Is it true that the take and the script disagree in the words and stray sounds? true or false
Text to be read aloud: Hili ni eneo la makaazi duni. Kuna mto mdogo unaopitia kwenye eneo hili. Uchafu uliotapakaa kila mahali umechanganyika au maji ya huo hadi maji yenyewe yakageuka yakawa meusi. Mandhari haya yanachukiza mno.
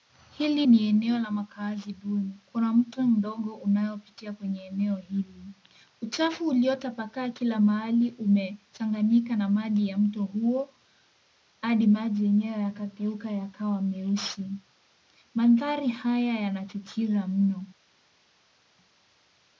true